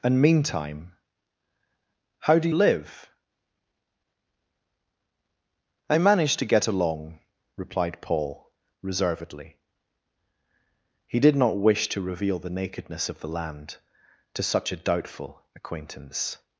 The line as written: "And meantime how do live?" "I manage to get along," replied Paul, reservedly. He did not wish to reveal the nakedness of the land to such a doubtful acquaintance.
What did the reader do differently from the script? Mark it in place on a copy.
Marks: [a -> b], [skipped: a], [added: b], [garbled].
"And meantime how do live?" "I manage to get along," replied Paul, reservedly. He did not wish to reveal the nakedness of the land to such a doubtful acquaintance.